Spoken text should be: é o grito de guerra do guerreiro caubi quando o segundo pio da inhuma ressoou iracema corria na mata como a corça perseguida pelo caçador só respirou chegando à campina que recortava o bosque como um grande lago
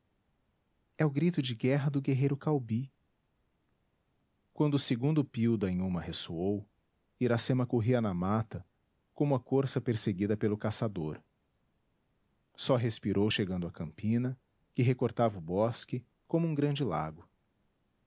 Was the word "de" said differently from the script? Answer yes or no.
no